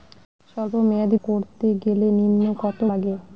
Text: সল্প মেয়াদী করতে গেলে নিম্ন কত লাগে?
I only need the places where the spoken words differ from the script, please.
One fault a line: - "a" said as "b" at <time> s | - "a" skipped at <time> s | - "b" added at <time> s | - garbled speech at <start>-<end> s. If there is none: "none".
none